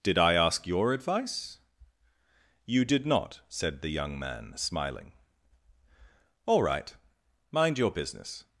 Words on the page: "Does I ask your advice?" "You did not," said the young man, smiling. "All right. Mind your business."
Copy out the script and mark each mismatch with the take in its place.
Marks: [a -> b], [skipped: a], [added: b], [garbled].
["Does -> Did] I ask your advice?" "You did not," said the young man, smiling. "All right. Mind your business."